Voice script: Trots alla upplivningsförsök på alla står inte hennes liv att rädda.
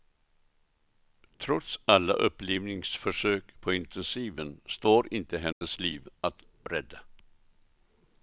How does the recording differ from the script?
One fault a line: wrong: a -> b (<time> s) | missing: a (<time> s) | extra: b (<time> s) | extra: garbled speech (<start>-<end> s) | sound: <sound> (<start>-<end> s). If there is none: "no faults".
wrong: alla -> intensiven (3.7 s)
sound: dropout (5.5-5.6 s)